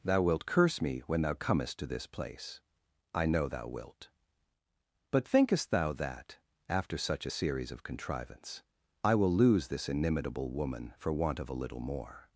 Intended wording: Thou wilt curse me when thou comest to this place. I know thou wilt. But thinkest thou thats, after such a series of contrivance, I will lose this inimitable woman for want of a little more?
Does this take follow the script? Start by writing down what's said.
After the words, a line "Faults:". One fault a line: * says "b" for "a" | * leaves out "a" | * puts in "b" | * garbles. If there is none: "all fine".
Thou wilt curse me when thou comest to this place. I know thou wilt. But thinkest thou that, after such a series of contrivance, I will lose this inimitable woman for want of a little more?
Faults:
* says "that" for "thats"